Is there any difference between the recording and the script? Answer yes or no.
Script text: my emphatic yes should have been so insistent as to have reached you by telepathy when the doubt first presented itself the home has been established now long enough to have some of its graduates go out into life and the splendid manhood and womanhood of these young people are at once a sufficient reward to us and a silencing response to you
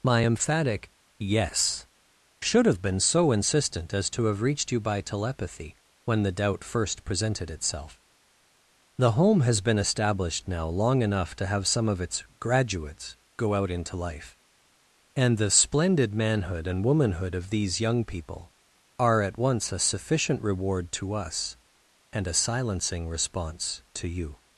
no